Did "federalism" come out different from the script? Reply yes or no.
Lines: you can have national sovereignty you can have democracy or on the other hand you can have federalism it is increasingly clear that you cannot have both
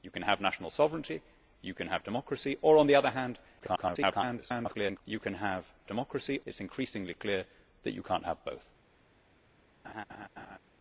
yes